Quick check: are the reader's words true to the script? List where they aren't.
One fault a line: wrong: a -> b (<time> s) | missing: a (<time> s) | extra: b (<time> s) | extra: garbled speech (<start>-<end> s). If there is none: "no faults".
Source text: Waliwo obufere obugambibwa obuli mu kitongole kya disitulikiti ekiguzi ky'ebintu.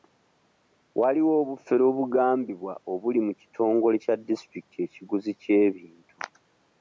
no faults